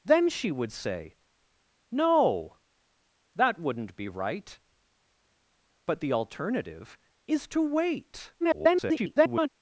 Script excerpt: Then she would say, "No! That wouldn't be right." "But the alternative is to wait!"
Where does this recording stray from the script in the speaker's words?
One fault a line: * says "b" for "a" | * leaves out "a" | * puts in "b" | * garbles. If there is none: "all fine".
* garbles